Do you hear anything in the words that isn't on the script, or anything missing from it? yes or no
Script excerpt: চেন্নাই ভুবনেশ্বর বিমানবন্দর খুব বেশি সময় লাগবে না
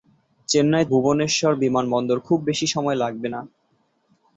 no